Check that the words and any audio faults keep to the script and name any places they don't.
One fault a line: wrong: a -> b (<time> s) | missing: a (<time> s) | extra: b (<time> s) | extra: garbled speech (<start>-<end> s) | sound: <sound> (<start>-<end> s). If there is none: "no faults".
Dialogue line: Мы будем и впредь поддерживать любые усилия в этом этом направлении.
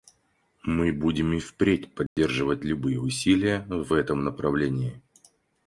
sound: dropout (2.1-2.2 s)
missing: этом (4.2 s)